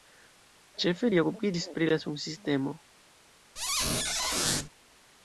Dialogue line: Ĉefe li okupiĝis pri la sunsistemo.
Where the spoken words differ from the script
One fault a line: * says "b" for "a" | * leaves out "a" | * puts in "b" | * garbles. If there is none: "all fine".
all fine